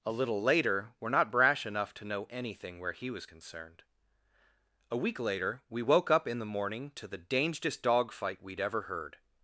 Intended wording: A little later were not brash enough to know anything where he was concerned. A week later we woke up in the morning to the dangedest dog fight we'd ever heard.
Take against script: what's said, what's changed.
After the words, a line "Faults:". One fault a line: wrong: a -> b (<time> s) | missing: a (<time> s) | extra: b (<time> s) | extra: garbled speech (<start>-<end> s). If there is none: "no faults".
A little later were not brash enough to know anything where he was concerned. A week later we woke up in the morning to the dangedest dog fight we'd ever heard.
Faults:
no faults